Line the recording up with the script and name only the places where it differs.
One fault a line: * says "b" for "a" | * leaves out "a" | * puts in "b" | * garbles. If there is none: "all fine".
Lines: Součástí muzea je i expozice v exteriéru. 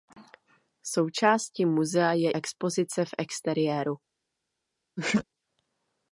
* leaves out "i"